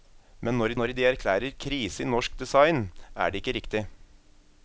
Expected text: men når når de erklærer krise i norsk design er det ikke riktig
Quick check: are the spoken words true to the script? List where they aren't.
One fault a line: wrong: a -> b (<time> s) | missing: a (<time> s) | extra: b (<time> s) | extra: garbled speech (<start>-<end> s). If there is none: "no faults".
no faults